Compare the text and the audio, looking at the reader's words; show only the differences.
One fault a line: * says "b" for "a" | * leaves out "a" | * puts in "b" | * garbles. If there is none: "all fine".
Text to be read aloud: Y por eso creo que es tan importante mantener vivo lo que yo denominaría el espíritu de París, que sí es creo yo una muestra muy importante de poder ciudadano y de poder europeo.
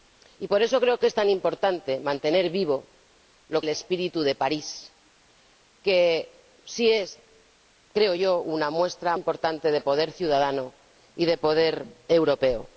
* leaves out "que yo denominaría"
* leaves out "muy"